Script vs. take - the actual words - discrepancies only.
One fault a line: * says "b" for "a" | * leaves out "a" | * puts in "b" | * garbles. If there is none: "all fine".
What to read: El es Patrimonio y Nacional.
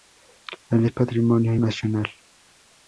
all fine